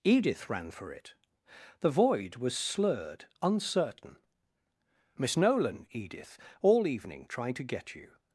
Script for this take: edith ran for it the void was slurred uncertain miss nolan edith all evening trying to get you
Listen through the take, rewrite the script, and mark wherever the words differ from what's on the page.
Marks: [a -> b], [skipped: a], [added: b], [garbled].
edith ran for it the void was slurred uncertain miss nolan edith all evening trying to get you